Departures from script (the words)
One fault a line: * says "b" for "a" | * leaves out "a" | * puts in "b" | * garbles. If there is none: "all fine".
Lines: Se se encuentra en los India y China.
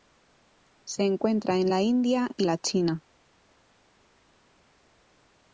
* leaves out "se"
* says "la" for "los"
* puts in "la"